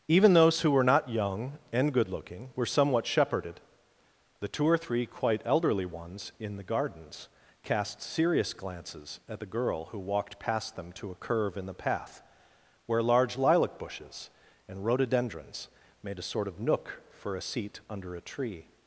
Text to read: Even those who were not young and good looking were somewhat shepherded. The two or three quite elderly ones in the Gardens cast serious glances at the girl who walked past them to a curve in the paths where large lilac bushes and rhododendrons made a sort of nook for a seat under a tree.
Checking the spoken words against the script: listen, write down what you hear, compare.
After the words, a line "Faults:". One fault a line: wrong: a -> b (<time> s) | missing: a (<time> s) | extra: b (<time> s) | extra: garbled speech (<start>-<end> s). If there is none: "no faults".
Even those who were not young and good looking were somewhat shepherded. The two or three quite elderly ones in the Gardens cast serious glances at the girl who walked past them to a curve in the path where large lilac bushes and rhododendrons made a sort of nook for a seat under a tree.
Faults:
wrong: paths -> path (11.7 s)